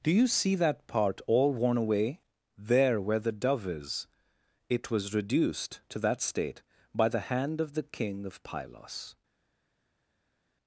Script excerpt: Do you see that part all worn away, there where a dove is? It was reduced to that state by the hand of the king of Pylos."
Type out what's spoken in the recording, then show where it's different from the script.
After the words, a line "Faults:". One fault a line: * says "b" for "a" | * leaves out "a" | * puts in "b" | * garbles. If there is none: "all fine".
Do you see that part all worn away, there where the dove is? It was reduced to that state by the hand of the king of Pylos."
Faults:
* says "the" for "a"